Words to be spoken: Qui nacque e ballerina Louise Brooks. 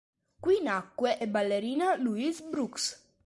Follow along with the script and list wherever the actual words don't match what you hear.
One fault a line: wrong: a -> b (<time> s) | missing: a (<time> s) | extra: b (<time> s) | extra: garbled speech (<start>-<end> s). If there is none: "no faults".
no faults